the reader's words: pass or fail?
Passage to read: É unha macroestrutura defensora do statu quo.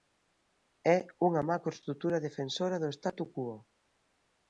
pass